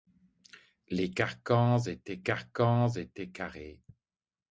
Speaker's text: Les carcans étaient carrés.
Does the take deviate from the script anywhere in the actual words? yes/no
yes